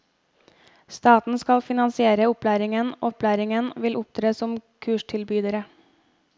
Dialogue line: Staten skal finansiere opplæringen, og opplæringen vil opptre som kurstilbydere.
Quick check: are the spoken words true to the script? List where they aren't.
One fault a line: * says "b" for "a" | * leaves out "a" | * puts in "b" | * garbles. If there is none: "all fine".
all fine